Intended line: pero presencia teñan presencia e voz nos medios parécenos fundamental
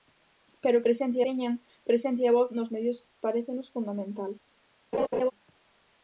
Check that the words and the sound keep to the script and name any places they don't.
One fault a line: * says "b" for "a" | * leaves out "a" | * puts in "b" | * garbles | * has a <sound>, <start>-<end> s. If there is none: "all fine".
* has a laugh, 4.9-5.3 s